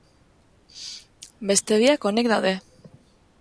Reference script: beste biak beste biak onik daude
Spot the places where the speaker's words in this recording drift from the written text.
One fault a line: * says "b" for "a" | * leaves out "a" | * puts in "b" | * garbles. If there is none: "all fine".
* leaves out "beste biak"